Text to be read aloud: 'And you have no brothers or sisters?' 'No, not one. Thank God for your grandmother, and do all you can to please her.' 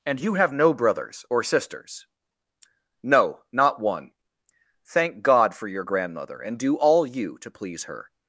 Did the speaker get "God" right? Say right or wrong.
right